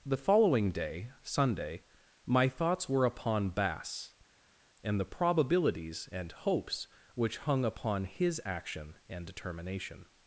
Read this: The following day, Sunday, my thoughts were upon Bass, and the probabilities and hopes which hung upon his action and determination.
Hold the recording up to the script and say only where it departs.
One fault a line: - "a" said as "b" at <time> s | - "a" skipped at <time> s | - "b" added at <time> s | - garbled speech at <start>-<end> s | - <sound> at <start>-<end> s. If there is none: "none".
none